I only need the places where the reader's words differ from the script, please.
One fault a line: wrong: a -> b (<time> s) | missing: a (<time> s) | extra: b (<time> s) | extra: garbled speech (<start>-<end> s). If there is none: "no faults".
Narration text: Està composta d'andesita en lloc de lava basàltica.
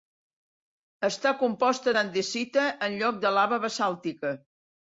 no faults